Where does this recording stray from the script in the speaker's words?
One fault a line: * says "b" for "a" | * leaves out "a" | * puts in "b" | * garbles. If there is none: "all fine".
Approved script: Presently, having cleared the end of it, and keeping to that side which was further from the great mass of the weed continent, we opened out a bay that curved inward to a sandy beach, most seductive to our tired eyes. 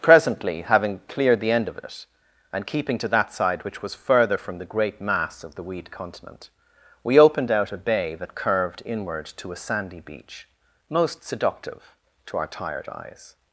all fine